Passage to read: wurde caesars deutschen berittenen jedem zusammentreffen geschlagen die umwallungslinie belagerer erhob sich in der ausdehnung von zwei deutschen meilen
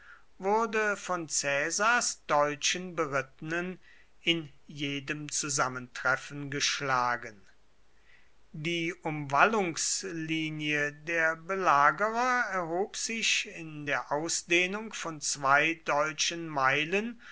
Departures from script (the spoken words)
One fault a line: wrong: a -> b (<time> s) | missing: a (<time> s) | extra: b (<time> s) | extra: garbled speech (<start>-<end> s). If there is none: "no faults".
extra: von (1.0 s)
extra: in (4.2 s)
extra: der (10.9 s)